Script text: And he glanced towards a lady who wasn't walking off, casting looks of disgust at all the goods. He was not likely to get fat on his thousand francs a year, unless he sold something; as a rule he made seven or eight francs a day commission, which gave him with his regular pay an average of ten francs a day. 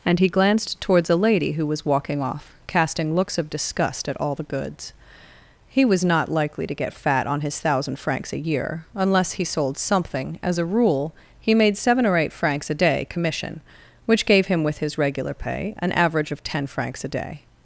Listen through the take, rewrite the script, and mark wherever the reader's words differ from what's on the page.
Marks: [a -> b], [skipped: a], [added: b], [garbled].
And he glanced towards a lady who [wasn't -> was] walking off, casting looks of disgust at all the goods. He was not likely to get fat on his thousand francs a year, unless he sold something; as a rule he made seven or eight francs a day commission, which gave him with his regular pay an average of ten francs a day.